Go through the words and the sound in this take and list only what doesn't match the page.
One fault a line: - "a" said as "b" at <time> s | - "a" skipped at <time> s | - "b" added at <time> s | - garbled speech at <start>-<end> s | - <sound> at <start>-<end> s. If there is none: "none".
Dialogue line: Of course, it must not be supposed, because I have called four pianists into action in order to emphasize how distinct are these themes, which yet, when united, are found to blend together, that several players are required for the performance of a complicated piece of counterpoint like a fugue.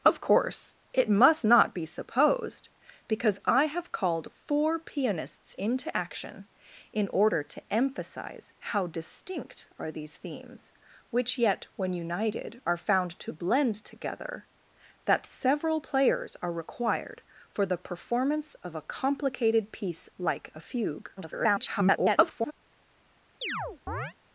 - "of counterpoint" skipped at 20.1 s
- garbled speech at 21.2-22.5 s
- chirp at 23.4-24.1 s